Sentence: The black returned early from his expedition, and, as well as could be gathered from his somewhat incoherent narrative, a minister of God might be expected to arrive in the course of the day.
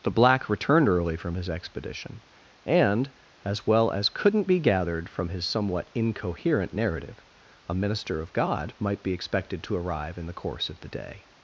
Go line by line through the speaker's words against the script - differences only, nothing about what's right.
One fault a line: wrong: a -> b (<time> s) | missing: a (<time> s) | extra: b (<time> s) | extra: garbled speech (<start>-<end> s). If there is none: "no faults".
wrong: could -> couldn't (4.1 s)